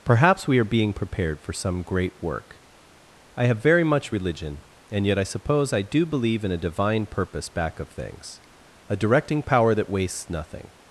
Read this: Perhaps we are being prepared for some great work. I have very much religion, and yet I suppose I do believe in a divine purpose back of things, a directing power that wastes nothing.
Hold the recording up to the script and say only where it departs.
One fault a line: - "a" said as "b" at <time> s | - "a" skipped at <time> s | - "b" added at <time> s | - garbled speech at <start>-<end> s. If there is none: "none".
none